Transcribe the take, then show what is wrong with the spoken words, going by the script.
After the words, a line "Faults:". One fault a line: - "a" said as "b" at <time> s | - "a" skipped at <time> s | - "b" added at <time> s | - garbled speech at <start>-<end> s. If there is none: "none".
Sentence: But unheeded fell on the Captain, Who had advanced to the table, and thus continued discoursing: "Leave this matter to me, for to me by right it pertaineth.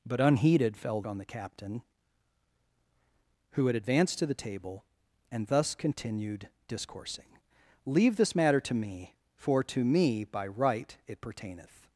But unheeded fell on the Captain, Who had advanced to the table, and thus continued discoursing: "Leave this matter to me, for to me by right it pertaineth.
Faults:
none